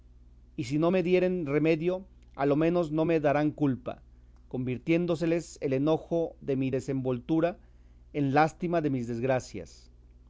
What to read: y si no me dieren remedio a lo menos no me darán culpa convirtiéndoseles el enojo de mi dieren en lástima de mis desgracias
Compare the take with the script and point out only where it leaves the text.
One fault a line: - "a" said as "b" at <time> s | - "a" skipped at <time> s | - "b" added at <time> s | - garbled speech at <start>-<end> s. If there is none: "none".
- "dieren" said as "desenvoltura" at 6.7 s